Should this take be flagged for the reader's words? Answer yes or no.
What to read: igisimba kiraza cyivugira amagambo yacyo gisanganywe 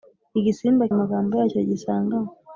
yes